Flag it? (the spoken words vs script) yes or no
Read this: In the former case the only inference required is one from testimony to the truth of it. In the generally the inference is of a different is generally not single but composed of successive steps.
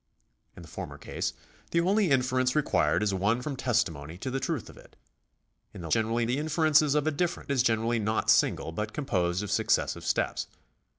no